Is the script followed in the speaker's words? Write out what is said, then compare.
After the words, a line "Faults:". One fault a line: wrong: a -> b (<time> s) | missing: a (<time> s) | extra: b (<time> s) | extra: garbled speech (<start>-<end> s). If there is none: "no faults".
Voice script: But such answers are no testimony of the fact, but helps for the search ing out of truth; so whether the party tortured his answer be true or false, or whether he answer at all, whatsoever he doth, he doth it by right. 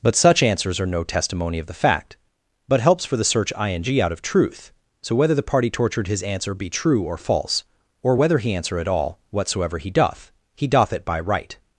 But such answers are no testimony of the fact, but helps for the search ing out of truth; so whether the party tortured his answer be true or false, or whether he answer at all, whatsoever he doth, he doth it by right.
Faults:
no faults